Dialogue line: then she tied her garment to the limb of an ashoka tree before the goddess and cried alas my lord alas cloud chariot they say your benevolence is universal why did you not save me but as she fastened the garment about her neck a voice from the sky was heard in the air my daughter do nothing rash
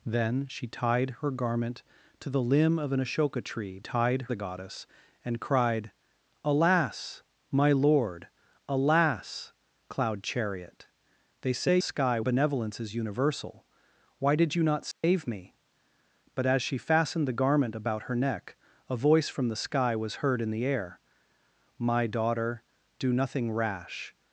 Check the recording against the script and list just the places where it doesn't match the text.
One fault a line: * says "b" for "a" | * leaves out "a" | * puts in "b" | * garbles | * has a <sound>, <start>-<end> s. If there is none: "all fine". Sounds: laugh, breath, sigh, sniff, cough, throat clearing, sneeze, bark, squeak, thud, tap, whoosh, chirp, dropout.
* says "tied" for "before"
* says "sky" for "your"
* has a dropout, 14.9-15.0 s